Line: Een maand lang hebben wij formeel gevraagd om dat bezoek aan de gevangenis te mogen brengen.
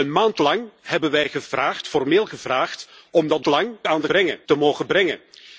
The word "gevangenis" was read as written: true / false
false